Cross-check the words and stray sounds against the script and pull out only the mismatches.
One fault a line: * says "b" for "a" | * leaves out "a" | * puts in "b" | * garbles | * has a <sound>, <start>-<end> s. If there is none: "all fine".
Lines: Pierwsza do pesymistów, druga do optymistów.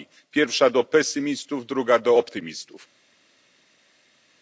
all fine